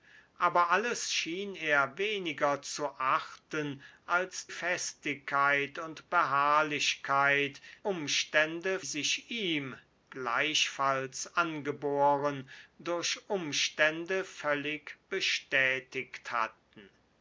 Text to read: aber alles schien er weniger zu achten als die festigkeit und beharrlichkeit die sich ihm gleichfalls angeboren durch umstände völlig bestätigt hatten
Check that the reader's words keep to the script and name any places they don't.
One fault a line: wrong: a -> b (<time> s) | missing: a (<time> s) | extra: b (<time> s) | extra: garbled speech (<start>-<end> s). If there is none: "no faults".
missing: die (4.5 s)
wrong: die -> umstände (7.8 s)